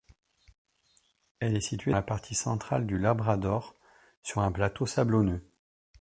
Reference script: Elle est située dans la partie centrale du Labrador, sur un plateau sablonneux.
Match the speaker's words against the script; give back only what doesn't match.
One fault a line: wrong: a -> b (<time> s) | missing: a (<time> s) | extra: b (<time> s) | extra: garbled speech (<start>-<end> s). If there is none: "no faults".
missing: dans (1.9 s)